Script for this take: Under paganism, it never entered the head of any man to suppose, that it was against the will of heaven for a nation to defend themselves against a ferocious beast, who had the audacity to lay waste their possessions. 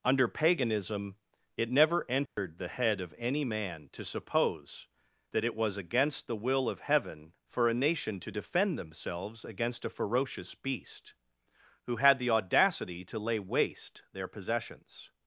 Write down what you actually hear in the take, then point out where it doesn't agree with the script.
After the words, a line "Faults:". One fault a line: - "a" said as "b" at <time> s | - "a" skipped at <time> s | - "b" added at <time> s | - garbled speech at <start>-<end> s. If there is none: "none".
Under paganism, it never entered the head of any man to suppose, that it was against the will of heaven for a nation to defend themselves against a ferocious beast, who had the audacity to lay waste their possessions.
Faults:
none